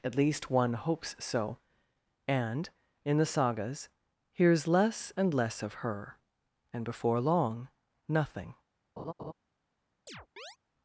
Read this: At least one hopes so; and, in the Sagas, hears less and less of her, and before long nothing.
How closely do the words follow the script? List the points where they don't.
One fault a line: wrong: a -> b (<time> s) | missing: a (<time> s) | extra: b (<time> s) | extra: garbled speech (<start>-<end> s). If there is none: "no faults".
no faults